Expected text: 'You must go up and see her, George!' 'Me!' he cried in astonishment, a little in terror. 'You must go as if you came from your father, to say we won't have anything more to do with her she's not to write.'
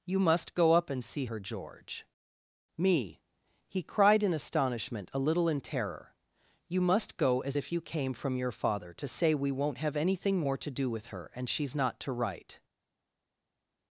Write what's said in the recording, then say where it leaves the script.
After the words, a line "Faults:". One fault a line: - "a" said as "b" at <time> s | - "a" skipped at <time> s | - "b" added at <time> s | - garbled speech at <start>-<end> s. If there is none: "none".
'You must go up and see her, George!' 'Me!' he cried in astonishment, a little in terror. 'You must go as if you came from your father, to say we won't have anything more to do with her and she's not to write.'
Faults:
- "and" added at 11.3 s